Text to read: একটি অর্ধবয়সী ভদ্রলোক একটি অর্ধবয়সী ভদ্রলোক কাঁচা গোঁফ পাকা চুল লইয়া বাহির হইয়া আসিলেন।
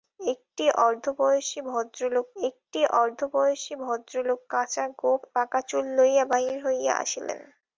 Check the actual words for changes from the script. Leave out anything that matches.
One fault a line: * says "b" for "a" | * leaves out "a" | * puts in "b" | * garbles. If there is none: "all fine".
all fine